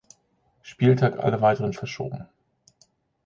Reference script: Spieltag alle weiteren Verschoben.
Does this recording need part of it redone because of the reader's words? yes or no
no